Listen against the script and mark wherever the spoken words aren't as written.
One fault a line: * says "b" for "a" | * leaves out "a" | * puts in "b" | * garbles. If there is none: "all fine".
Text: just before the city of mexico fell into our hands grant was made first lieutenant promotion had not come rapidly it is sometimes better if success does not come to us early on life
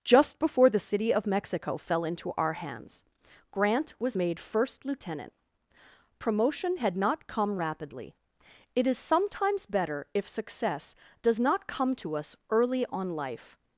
all fine